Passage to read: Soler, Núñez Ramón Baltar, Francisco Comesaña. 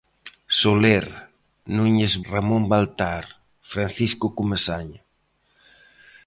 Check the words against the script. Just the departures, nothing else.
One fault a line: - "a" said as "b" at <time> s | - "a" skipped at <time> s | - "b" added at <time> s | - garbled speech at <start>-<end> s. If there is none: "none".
none